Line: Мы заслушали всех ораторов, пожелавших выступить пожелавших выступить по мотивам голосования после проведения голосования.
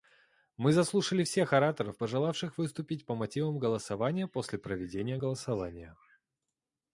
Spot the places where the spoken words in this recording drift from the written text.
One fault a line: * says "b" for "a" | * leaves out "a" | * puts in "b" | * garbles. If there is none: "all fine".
* leaves out "пожелавших выступить"